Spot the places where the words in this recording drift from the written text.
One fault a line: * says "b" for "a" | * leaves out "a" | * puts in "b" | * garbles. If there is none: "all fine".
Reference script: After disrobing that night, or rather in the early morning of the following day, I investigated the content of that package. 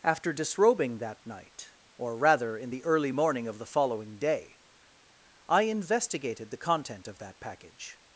all fine